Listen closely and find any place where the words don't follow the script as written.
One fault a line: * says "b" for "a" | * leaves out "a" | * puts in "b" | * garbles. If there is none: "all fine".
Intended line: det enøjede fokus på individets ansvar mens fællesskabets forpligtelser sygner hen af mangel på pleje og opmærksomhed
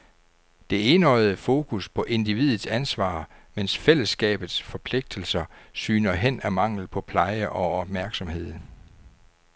all fine